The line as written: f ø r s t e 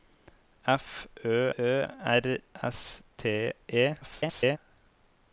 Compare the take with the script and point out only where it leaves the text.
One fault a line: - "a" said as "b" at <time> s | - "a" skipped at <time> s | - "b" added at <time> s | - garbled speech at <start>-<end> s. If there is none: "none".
- "ø" added at 1.6 s
- garbled speech at 4.0-4.6 s